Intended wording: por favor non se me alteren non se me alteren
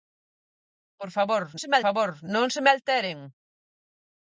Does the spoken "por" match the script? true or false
true